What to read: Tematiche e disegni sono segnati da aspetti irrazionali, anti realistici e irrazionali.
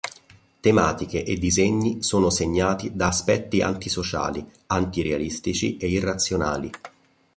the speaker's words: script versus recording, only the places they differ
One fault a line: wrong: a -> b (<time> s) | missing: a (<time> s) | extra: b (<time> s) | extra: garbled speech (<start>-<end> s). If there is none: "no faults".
wrong: irrazionali -> antisociali (3.6 s)